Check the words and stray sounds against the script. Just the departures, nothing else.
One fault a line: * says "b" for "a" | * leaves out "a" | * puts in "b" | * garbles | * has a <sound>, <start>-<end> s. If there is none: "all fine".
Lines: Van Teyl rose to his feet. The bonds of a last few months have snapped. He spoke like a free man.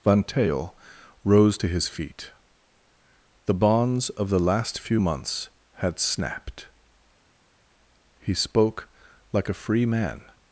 * says "the" for "a"
* says "had" for "have"